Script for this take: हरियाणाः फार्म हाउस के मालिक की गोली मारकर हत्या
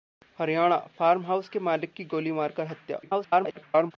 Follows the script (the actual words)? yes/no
no